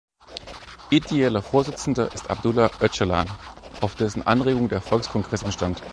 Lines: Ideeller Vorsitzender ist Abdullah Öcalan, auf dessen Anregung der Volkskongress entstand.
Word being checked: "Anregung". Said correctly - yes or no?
yes